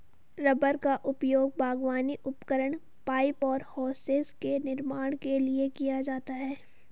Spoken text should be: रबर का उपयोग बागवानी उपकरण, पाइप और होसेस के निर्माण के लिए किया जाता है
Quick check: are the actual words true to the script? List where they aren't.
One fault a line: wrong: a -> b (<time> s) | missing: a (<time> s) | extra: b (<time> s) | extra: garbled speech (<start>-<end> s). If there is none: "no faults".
no faults